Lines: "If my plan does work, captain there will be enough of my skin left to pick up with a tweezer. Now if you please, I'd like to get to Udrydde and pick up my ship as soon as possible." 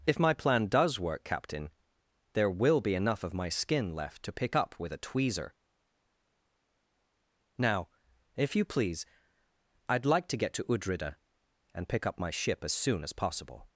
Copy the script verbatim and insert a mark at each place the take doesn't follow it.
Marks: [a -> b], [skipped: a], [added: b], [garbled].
"If my plan does work, captain there will be enough of my skin left to pick up with a tweezer. Now if you please, I'd like to get to Udrydde and pick up my ship as soon as possible."